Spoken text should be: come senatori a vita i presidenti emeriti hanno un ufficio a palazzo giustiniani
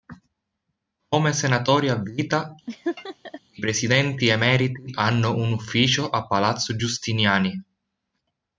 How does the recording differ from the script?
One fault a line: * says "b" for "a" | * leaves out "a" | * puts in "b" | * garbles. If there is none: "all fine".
all fine